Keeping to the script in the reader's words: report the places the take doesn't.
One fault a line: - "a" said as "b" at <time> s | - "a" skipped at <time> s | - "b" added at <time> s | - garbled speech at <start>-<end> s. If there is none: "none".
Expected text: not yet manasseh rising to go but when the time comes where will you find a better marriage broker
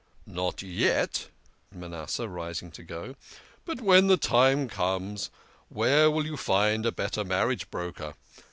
none